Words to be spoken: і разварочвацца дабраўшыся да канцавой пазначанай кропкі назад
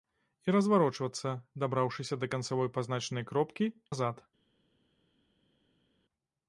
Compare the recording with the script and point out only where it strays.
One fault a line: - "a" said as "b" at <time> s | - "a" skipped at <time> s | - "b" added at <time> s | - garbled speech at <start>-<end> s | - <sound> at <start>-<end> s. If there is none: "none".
none